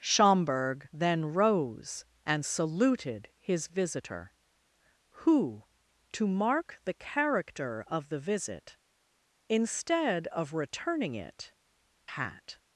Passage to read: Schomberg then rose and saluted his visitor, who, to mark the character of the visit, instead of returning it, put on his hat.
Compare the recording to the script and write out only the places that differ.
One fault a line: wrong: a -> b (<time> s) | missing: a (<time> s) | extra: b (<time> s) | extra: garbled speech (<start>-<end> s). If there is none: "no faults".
missing: put on his (11.5 s)